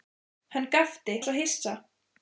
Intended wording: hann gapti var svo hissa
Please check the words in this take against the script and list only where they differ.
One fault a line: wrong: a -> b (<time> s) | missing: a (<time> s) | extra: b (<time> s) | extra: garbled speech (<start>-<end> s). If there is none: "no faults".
no faults